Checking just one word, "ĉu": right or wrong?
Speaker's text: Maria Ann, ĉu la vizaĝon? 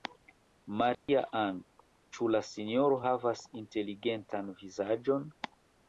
right